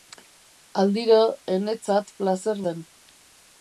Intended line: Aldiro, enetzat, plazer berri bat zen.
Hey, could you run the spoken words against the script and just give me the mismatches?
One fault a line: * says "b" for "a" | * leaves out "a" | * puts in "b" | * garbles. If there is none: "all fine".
* leaves out "berri bat"